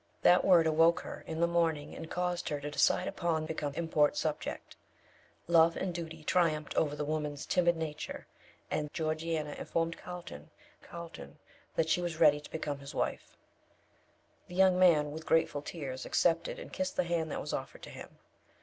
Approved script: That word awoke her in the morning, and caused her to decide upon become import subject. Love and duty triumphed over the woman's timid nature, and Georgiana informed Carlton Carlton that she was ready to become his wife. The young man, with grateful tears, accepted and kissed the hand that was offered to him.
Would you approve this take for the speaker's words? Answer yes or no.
yes